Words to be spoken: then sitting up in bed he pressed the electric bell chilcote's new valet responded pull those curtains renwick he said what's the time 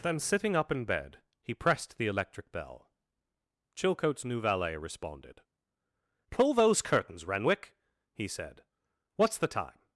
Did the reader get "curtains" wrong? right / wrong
right